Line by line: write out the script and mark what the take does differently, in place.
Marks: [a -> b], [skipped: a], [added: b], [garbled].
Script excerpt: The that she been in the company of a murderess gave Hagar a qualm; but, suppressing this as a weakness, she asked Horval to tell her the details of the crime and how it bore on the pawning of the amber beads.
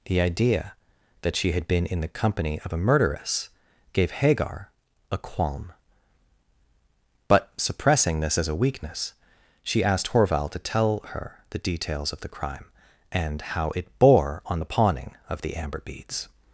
The [added: idea] that she [added: had] been in the company of a murderess gave Hagar a qualm; but, suppressing this as a weakness, she asked Horval to tell her the details of the crime and how it bore on the pawning of the amber beads.